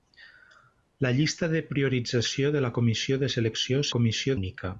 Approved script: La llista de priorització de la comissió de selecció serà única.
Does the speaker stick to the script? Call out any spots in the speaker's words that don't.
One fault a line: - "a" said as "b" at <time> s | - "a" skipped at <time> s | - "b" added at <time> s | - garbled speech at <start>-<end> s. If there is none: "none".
- "serà" said as "comissió" at 4.0 s